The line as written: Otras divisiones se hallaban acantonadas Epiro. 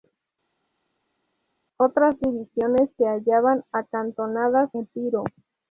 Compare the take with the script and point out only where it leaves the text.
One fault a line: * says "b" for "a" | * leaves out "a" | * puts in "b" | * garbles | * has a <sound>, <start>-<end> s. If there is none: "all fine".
all fine